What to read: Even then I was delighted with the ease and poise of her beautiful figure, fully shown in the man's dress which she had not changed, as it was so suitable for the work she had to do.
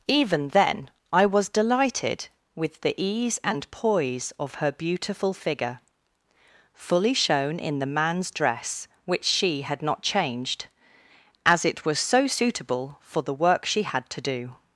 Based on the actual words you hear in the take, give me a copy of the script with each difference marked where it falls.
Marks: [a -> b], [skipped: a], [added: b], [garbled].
Even then I was delighted with the ease and poise of her beautiful figure, fully shown in the man's dress which she had not changed, as it was so suitable for the work she had to do.